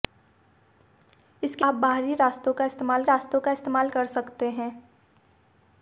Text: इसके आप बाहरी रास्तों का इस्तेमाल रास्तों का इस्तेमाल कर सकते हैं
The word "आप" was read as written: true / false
true